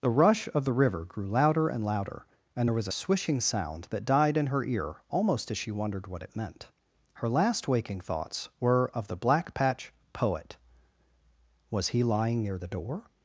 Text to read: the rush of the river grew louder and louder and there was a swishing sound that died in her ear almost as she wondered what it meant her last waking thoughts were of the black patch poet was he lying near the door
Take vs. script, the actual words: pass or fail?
pass